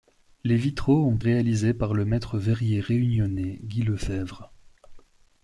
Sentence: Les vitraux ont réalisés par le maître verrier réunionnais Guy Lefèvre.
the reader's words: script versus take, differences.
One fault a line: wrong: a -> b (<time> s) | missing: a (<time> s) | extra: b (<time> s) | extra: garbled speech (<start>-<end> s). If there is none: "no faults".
no faults